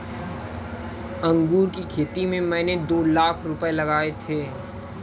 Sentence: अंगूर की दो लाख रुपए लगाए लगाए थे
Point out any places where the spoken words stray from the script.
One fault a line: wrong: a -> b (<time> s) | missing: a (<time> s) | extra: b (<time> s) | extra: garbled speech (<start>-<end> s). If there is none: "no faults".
extra: खेती में मैंने (1.9 s)
missing: लगाए (4.1 s)